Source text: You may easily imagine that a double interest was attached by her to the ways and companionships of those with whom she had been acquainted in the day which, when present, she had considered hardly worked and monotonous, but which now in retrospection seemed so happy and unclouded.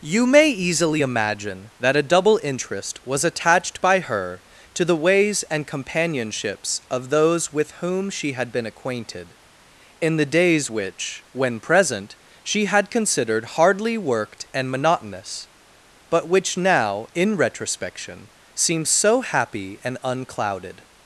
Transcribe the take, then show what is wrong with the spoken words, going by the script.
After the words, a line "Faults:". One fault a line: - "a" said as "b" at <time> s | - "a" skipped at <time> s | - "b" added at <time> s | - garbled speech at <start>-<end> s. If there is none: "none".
You may easily imagine that a double interest was attached by her to the ways and companionships of those with whom she had been acquainted in the days which, when present, she had considered hardly worked and monotonous, but which now in retrospection seemed so happy and unclouded.
Faults:
- "day" said as "days" at 10.2 s